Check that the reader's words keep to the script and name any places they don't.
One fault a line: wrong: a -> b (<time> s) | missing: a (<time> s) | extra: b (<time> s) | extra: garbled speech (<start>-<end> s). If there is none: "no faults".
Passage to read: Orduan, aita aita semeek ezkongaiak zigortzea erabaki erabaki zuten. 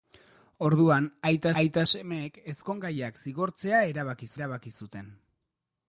no faults